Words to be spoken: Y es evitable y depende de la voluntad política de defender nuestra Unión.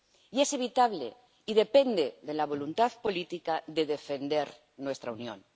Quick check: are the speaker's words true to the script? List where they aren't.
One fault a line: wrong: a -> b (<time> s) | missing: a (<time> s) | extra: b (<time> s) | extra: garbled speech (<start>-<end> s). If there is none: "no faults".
no faults